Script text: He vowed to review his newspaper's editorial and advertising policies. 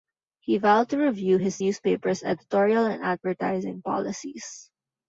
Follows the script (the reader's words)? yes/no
yes